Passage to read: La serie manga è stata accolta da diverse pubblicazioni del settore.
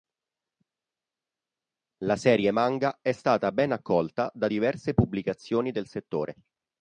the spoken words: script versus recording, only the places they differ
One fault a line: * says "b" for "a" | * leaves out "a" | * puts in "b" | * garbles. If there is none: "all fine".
* puts in "ben"